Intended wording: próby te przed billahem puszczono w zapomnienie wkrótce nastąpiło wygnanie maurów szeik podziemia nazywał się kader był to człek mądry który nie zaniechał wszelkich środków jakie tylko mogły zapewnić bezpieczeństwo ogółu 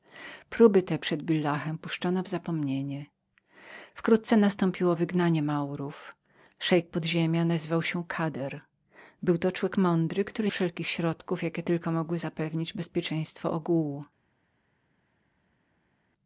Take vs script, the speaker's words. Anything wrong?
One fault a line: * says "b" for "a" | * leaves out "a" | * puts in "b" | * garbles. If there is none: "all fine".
* leaves out "nie zaniechał"